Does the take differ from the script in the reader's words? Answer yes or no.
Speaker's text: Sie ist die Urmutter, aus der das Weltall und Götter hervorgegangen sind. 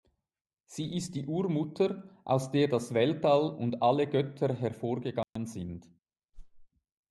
yes